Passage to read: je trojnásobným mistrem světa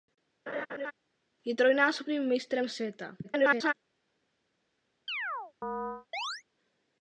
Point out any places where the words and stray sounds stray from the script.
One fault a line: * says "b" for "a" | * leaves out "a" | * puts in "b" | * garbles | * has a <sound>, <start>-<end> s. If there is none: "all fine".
* has a laugh, 0.5-0.9 s
* garbles
* has a chirp, 5.1-6.4 s